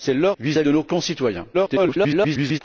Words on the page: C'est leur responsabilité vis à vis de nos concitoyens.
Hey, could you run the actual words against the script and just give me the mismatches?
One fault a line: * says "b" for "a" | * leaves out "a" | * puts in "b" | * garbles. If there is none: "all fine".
* leaves out "responsabilité"
* leaves out "vis"
* garbles